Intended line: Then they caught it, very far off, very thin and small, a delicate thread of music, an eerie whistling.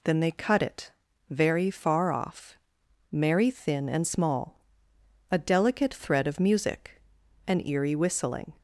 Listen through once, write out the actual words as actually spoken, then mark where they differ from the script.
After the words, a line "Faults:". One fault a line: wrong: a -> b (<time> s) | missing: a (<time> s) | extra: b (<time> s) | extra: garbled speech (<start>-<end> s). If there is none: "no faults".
Then they cut it, very far off, merry thin and small, a delicate thread of music, an eerie whistling.
Faults:
wrong: caught -> cut (0.3 s)
wrong: very -> merry (3.1 s)